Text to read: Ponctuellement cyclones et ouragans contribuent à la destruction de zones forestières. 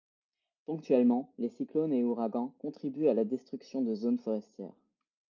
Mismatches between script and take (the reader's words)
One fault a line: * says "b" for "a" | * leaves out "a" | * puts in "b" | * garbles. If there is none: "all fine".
* puts in "les"